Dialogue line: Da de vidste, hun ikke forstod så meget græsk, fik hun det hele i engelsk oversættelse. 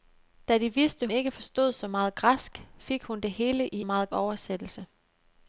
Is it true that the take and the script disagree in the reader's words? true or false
true